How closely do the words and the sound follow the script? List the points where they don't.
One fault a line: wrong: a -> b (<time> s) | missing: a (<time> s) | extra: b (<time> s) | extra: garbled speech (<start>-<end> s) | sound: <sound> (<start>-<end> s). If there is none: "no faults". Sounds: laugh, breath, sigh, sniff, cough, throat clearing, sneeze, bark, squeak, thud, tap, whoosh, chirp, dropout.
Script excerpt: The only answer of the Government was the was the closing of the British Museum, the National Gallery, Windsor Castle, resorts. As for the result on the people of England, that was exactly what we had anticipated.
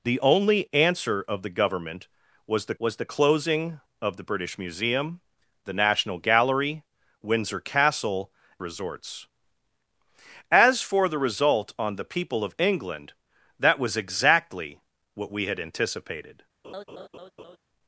sound: laugh (16.6-17.6 s)